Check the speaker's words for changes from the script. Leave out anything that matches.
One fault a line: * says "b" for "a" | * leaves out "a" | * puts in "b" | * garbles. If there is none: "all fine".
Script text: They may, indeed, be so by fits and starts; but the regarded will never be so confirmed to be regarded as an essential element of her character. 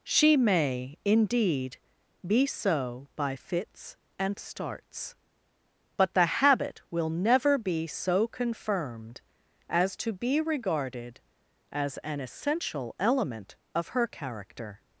* says "She" for "They"
* says "habit" for "regarded"
* puts in "as"